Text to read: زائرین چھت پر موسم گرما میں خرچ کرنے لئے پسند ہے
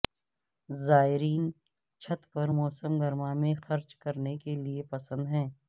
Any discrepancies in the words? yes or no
yes